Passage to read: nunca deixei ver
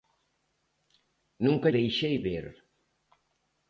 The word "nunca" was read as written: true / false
true